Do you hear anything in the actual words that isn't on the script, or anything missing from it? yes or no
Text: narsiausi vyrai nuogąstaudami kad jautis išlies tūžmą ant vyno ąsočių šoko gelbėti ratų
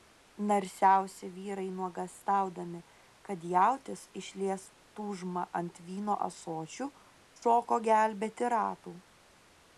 no